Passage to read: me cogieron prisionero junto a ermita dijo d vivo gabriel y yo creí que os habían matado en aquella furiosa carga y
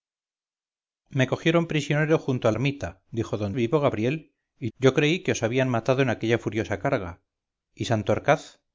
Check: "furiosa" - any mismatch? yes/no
no